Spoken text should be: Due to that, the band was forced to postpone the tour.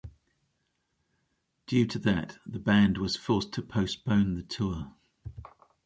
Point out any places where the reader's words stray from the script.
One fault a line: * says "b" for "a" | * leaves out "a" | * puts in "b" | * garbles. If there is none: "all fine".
all fine